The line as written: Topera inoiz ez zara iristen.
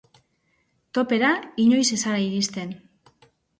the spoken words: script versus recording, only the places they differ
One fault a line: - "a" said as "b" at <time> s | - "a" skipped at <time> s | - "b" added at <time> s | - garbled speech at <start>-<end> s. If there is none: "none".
none